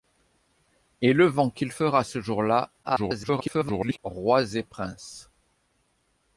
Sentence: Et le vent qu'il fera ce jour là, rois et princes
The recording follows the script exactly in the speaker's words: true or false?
false